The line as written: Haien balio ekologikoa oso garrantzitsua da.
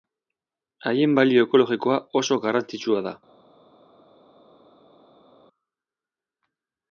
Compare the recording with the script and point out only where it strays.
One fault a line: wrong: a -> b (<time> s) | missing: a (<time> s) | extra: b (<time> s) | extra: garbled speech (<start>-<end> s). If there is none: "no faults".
no faults